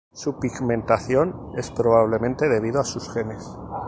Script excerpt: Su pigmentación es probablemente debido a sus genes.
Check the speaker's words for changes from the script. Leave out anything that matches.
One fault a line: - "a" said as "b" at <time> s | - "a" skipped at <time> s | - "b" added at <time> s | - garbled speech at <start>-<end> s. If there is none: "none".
none